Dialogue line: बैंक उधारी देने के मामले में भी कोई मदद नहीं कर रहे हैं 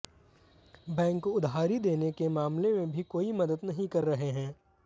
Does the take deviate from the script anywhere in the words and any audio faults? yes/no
no